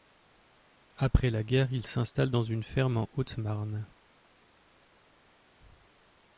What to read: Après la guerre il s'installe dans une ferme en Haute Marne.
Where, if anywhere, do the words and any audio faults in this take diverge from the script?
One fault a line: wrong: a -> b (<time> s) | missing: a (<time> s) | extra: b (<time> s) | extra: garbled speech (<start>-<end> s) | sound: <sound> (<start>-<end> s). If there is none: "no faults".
no faults